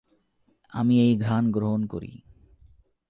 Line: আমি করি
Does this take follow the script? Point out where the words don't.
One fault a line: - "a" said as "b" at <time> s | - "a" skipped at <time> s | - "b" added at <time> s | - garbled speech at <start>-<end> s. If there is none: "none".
- "এই ঘ্রাণ গ্রহণ" added at 1.0 s